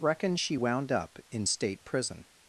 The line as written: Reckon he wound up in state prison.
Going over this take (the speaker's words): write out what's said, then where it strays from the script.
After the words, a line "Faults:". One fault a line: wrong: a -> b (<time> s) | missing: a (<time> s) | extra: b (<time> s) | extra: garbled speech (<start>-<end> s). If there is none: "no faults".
Reckon she wound up in state prison.
Faults:
wrong: he -> she (0.3 s)